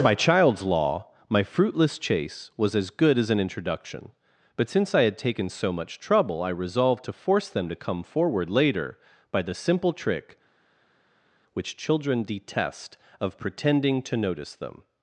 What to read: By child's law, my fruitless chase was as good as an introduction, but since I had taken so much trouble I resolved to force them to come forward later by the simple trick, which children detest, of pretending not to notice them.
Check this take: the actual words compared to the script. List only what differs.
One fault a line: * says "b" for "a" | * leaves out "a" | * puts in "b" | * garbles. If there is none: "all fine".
* leaves out "not"